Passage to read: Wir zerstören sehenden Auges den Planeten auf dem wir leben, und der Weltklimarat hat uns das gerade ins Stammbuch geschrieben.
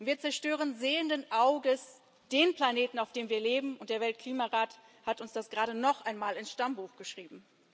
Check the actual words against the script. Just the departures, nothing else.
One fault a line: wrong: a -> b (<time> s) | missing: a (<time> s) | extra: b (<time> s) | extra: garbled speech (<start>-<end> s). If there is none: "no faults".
extra: noch einmal (5.7 s)